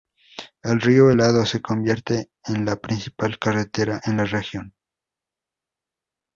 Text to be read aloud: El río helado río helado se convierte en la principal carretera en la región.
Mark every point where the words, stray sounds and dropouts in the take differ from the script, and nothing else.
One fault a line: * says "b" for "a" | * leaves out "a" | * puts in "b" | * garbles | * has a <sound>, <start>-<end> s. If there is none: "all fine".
* leaves out "río helado"